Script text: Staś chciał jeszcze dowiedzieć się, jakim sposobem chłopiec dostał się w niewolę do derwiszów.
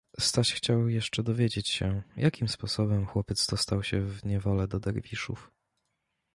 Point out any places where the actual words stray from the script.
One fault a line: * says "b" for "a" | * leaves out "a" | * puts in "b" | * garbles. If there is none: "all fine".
all fine